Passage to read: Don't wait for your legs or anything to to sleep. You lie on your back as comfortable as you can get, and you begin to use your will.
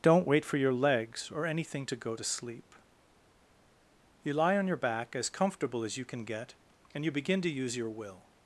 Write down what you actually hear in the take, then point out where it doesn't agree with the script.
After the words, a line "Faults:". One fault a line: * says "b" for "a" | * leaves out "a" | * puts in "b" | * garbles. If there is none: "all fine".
Don't wait for your legs or anything to go to sleep. You lie on your back as comfortable as you can get, and you begin to use your will.
Faults:
* puts in "go"